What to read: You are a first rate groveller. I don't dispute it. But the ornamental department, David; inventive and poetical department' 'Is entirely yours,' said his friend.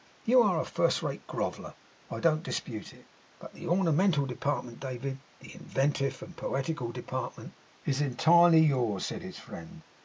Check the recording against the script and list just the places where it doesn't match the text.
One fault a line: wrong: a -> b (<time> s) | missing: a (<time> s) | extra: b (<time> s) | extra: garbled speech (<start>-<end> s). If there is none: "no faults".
extra: the (5.4 s)